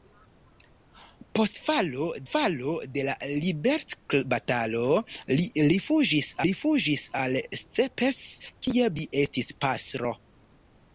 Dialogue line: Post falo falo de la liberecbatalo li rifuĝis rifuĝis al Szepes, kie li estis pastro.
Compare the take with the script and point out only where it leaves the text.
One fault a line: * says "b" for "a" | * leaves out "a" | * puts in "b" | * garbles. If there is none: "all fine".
all fine